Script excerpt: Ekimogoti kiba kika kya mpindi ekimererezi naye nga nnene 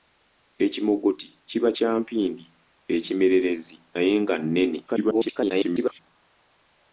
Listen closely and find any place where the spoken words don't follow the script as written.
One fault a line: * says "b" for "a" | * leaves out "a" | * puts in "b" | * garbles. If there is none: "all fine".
* leaves out "kika"
* garbles